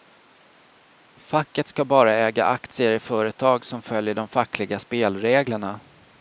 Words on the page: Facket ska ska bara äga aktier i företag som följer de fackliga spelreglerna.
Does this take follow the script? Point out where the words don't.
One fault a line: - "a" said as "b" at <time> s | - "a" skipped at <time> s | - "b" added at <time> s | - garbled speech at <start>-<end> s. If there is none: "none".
- "ska" skipped at 1.9 s